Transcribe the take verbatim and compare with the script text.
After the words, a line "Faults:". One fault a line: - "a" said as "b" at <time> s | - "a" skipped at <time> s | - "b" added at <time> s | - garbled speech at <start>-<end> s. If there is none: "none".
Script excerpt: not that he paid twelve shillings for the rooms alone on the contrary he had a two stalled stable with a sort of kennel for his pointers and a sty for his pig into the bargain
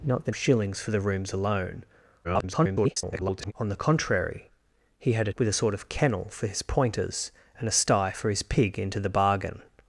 not that shillings for the rooms alone [garbled] on the contrary he had a with a sort of kennel for his pointers and a sty for his pig into the bargain
Faults:
- "he paid twelve" skipped at 0.3 s
- garbled speech at 2.2-3.5 s
- "two stalled stable" skipped at 5.3 s